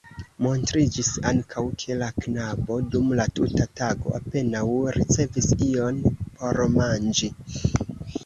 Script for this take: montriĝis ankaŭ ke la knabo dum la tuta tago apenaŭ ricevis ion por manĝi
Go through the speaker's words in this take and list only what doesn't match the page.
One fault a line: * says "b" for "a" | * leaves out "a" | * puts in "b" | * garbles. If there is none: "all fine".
all fine